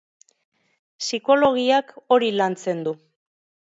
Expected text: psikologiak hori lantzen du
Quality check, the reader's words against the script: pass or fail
pass